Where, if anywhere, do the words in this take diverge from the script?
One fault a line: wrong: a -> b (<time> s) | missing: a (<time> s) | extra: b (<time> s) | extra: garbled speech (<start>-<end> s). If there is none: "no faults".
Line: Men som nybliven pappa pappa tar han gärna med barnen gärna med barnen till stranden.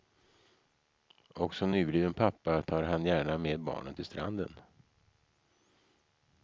wrong: Men -> Och (1.4 s)
missing: pappa (2.6 s)
missing: gärna med barnen (3.9 s)